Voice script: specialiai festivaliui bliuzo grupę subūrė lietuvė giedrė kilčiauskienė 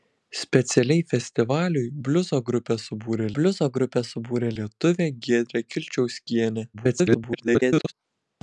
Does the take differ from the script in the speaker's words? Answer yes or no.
yes